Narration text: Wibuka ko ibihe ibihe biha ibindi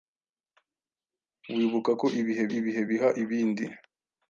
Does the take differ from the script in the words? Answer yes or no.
no